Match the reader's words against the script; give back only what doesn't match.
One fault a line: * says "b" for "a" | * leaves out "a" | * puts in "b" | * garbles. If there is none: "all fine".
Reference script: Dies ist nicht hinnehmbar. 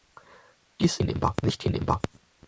* says "hinnehmbar" for "ist"